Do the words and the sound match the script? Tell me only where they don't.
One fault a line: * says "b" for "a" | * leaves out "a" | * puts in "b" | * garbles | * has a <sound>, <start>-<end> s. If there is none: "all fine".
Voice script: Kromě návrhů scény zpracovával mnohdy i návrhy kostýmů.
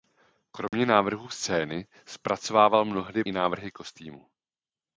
* has a dropout, 0.7-0.7 s